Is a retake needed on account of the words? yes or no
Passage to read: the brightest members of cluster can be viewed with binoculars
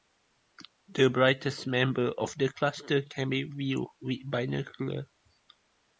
yes